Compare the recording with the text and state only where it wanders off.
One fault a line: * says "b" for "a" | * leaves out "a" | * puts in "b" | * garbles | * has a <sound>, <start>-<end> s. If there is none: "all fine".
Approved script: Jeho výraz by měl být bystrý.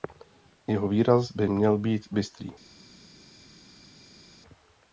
all fine